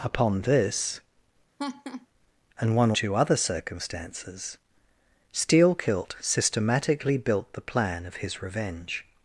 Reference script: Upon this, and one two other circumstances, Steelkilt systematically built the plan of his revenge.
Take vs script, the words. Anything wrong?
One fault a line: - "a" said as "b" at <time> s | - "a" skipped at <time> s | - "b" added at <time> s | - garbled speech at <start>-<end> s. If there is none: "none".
none